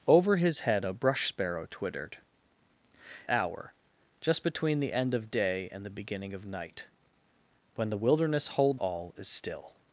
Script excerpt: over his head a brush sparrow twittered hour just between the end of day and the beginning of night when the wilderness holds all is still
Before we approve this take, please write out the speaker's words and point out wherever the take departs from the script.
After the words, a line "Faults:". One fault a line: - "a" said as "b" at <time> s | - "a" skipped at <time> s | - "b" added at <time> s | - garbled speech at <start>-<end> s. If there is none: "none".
over his head a brush sparrow twittered hour just between the end of day and the beginning of night when the wilderness holds all is still
Faults:
none